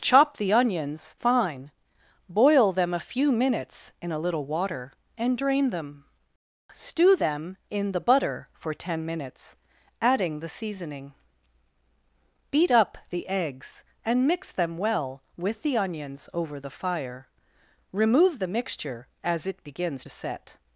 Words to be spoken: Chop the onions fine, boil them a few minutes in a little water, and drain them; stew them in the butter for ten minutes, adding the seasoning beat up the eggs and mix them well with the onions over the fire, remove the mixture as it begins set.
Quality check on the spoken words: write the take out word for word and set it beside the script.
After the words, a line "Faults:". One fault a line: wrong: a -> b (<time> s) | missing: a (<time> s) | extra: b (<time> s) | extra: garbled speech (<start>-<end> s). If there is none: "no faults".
Chop the onions fine, boil them a few minutes in a little water, and drain them; stew them in the butter for ten minutes, adding the seasoning beat up the eggs and mix them well with the onions over the fire, remove the mixture as it begins set.
Faults:
no faults